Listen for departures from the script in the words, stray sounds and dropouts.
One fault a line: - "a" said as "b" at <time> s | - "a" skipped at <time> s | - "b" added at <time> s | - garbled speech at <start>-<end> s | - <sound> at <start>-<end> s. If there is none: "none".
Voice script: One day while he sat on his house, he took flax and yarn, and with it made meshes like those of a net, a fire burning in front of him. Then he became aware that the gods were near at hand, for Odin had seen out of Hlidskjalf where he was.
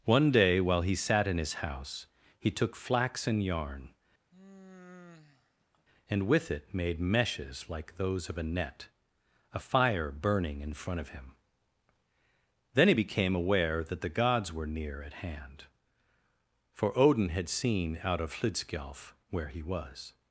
- "on" said as "in" at 1.3 s
- sigh at 4.3-5.9 s